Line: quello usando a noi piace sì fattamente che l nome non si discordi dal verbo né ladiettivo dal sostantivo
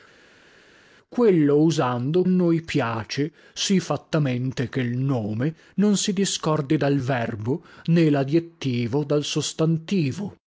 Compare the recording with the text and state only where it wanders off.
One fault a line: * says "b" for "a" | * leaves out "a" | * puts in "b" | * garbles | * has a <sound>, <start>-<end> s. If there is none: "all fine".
all fine